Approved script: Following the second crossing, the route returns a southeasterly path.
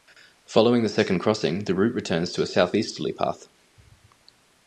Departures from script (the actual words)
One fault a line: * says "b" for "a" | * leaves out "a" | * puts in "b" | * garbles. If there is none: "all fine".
* puts in "to"